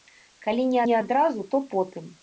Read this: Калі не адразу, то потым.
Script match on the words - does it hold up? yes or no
no